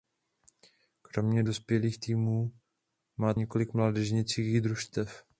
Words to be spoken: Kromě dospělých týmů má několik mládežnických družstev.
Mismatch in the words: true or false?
false